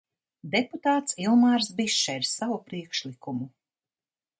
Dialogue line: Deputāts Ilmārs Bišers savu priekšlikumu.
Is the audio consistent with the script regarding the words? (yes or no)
yes